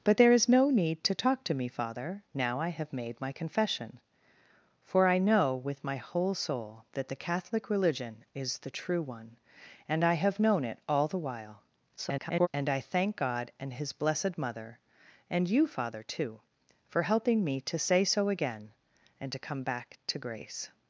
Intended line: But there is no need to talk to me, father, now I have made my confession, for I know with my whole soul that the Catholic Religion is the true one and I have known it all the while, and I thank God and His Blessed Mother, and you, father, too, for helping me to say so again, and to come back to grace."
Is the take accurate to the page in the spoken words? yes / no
no